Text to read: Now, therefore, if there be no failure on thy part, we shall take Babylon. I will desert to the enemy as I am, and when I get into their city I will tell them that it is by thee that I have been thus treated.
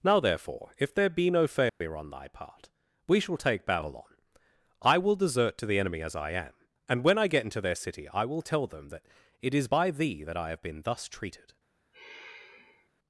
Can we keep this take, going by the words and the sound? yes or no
no